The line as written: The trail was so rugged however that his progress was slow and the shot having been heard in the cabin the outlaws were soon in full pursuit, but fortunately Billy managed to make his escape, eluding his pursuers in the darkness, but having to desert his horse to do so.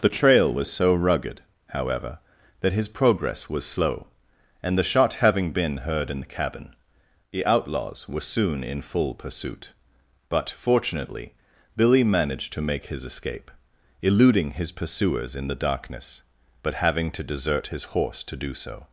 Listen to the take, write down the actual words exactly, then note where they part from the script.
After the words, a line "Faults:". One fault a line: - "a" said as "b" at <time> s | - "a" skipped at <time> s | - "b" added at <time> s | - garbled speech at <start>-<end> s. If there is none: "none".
The trail was so rugged however that his progress was slow and the shot having been heard in the cabin the outlaws were soon in full pursuit, but fortunately Billy managed to make his escape, eluding his pursuers in the darkness, but having to desert his horse to do so.
Faults:
none